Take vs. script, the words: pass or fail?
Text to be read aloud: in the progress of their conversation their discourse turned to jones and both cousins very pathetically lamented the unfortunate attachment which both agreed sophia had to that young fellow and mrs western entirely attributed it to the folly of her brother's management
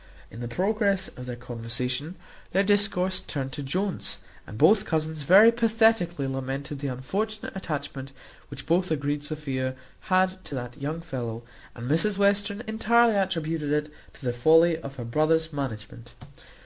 pass